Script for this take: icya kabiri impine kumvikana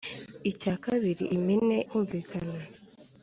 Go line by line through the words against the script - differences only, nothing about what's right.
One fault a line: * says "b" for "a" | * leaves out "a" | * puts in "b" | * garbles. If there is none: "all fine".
all fine